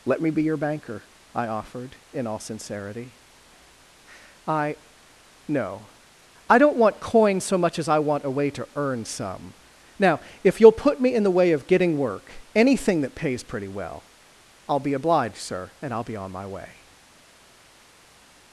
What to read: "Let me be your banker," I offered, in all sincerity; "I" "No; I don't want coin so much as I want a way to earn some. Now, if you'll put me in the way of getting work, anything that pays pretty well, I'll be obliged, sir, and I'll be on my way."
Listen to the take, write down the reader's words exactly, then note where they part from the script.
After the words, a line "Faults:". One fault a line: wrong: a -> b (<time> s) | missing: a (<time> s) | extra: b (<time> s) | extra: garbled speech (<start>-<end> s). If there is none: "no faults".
"Let me be your banker," I offered, in all sincerity; "I" "No; I don't want coin so much as I want a way to earn some. Now, if you'll put me in the way of getting work, anything that pays pretty well, I'll be obliged, sir, and I'll be on my way."
Faults:
no faults